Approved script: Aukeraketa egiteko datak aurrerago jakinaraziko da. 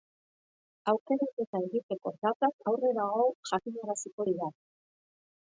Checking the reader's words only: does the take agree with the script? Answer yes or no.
no